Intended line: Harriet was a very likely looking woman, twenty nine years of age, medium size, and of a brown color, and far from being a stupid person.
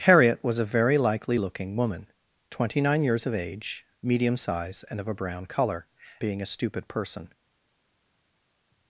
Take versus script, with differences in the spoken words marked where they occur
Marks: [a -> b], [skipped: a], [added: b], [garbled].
Harriet was a very likely looking woman, twenty nine years of age, medium size, and of a brown color, [skipped: and far from] being a stupid person.